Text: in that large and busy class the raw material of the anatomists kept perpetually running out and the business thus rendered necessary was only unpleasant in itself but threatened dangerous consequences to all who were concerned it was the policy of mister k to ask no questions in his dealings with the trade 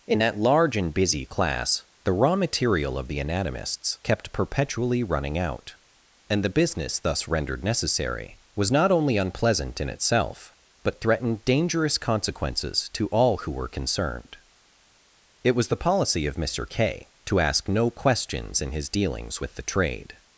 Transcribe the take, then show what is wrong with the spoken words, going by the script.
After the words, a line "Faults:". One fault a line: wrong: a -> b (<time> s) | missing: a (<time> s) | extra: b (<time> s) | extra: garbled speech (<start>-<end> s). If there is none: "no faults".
in that large and busy class the raw material of the anatomists kept perpetually running out and the business thus rendered necessary was not only unpleasant in itself but threatened dangerous consequences to all who were concerned it was the policy of mister k to ask no questions in his dealings with the trade
Faults:
extra: not (8.7 s)